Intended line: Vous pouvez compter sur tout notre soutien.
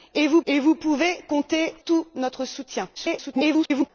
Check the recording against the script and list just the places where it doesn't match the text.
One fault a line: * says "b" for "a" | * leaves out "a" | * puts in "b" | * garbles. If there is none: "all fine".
* puts in "vous"
* leaves out "sur"
* garbles